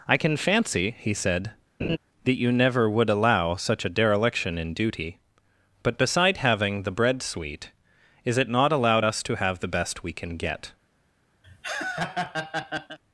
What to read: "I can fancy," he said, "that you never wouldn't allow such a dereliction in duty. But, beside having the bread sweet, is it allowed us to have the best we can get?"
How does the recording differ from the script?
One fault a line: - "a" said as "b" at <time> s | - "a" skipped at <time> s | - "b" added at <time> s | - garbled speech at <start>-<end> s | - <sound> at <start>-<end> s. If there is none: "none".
- laugh at 1.8-2.0 s
- "wouldn't" said as "would" at 2.9 s
- "not" added at 8.5 s
- laugh at 11.4-13.0 s